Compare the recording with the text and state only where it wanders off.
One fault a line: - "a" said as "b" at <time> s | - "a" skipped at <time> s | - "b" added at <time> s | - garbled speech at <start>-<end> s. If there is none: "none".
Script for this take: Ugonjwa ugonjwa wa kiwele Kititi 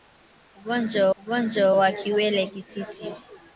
none